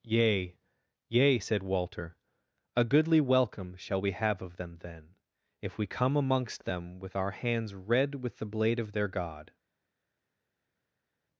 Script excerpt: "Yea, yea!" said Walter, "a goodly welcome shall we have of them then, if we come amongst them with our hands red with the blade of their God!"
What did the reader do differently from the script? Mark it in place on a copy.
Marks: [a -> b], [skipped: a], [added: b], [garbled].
"Yea, yea!" said Walter, "a goodly welcome shall we have of them then, if we come amongst them with our hands red with the blade of their God!"